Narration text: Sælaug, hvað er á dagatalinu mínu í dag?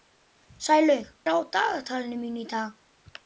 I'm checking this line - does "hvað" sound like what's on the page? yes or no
no